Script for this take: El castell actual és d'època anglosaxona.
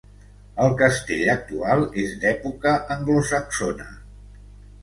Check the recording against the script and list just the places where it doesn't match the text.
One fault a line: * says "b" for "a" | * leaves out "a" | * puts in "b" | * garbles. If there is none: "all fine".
all fine